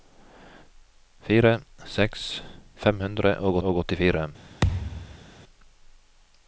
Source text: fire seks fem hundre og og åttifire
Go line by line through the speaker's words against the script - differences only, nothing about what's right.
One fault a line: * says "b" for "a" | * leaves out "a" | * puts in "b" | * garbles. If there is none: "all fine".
all fine